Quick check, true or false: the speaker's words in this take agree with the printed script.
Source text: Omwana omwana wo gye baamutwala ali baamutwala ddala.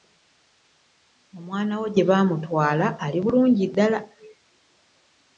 false